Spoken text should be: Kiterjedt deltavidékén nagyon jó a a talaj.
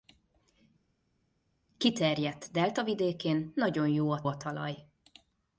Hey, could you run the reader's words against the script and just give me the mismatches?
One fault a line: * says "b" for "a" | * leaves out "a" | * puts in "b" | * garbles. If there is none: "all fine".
all fine